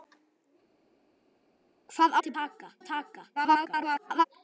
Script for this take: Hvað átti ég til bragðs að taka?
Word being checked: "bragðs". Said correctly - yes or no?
no